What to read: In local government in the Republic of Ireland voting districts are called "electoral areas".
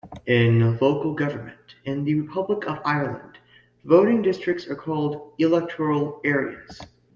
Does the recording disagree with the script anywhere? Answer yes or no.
no